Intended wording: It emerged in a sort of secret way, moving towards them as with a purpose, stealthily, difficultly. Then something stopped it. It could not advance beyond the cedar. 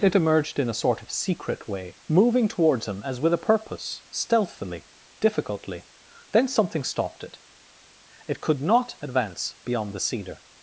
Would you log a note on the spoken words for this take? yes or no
yes